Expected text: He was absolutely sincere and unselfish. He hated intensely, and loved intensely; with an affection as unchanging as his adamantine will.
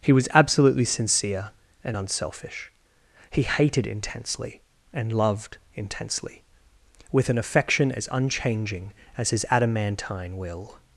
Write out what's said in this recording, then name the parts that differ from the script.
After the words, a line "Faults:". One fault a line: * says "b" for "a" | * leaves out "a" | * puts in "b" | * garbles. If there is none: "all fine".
He was absolutely sincere and unselfish. He hated intensely, and loved intensely; with an affection as unchanging as his adamantine will.
Faults:
all fine